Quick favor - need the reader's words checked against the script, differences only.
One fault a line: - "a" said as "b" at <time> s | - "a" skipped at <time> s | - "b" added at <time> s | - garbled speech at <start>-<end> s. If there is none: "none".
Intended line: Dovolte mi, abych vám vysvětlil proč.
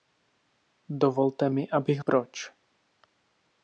- "vám vysvětlil" skipped at 2.0 s